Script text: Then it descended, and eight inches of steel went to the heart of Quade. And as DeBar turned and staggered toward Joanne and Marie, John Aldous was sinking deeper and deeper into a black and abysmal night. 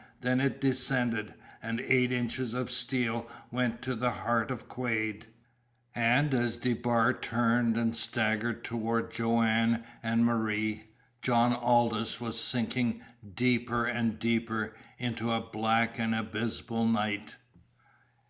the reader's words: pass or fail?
pass